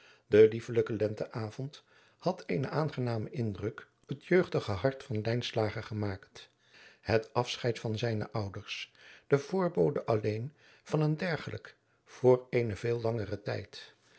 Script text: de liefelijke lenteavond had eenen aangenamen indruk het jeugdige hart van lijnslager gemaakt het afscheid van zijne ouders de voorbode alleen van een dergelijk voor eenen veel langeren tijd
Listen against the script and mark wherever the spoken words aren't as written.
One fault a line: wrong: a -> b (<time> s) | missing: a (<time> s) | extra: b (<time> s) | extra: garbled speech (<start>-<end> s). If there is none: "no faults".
no faults